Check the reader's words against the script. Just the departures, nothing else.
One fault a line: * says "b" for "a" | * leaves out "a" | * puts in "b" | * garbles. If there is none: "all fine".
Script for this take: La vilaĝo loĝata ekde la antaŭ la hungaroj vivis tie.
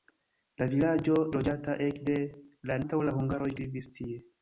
all fine